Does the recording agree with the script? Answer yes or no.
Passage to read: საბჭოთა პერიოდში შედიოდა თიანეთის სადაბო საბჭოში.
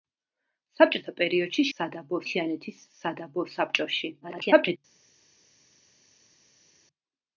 no